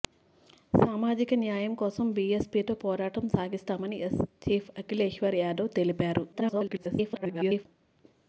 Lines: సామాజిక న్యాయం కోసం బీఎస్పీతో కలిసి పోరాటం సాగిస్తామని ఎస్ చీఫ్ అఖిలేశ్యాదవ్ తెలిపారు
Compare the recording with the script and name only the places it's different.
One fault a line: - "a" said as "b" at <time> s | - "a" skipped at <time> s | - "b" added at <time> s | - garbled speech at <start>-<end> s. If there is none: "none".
- "కలిసి" skipped at 2.8 s
- garbled speech at 6.3-7.7 s